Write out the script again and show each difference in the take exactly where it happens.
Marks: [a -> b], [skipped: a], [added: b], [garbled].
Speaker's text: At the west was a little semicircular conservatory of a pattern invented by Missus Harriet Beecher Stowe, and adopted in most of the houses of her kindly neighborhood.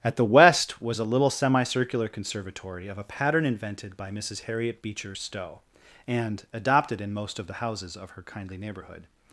At the west was a little semicircular conservatory of a pattern invented by Missus Harriet Beecher Stowe, and adopted in most of the houses of her kindly neighborhood.